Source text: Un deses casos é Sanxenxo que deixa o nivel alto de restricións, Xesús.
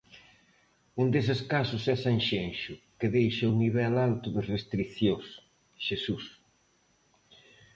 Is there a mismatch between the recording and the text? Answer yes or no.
no